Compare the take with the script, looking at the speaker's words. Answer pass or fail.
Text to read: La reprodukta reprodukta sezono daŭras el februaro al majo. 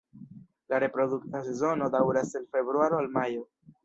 fail